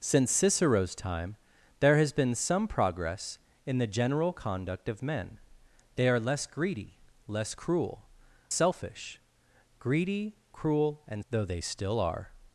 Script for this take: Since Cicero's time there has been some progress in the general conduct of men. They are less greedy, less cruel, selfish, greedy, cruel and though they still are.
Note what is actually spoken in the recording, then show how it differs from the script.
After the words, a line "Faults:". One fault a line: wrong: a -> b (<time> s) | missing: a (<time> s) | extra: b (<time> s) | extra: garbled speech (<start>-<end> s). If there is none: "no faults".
Since Cicero's time there has been some progress in the general conduct of men. They are less greedy, less cruel, selfish, greedy, cruel and though they still are.
Faults:
no faults